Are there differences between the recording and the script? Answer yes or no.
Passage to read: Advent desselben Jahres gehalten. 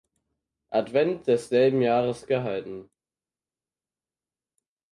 no